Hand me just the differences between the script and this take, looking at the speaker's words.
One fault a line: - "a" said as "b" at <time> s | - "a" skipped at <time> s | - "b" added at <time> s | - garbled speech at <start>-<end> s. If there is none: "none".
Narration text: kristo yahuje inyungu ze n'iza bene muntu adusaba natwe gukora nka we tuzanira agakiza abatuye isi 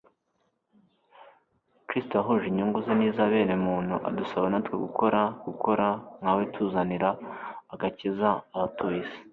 - "gukora" added at 5.5 s